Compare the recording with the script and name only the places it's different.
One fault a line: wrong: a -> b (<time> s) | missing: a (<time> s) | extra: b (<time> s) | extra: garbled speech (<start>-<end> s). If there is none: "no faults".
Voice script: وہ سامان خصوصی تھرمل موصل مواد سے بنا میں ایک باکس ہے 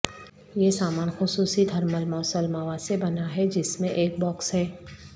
wrong: وہ -> یہ (0.6 s)
extra: ہے جس (3.4 s)